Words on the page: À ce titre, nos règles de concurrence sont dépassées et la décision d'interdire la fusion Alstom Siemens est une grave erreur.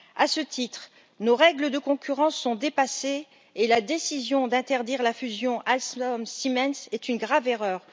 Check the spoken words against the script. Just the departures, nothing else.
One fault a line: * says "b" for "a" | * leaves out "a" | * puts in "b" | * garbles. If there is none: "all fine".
all fine